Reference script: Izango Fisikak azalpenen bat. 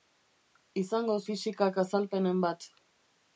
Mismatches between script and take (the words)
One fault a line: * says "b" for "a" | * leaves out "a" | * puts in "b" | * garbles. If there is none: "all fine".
all fine